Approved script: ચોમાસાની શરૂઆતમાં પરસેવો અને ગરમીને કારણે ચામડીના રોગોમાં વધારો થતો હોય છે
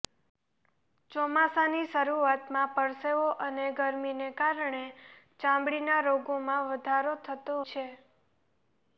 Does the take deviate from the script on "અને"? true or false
false